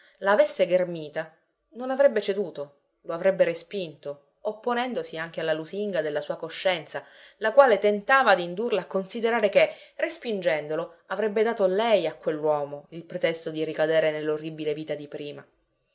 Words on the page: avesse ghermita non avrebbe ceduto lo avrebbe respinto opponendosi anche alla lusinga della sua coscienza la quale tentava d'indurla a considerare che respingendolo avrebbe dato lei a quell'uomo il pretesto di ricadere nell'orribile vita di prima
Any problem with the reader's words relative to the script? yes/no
no